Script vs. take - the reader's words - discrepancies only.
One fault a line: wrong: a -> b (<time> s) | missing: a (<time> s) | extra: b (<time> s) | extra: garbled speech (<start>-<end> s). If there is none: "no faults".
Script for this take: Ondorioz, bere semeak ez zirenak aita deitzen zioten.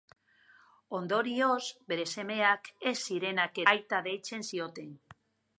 no faults